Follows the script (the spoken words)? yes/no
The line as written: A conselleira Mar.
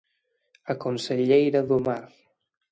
no